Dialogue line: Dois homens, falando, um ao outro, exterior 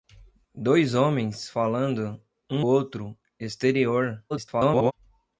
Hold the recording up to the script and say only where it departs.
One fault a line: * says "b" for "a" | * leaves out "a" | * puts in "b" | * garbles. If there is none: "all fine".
* leaves out "ao"
* garbles